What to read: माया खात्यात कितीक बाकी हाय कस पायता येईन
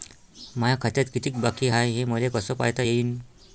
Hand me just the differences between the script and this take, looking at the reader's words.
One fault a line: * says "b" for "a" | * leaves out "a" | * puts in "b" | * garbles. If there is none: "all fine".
* puts in "हे मले"